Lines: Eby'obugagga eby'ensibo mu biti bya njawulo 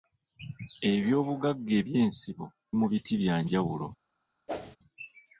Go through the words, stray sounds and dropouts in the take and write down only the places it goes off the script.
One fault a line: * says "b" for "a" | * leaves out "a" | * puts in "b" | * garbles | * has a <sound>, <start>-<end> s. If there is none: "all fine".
* has a whoosh, 4.5-4.8 s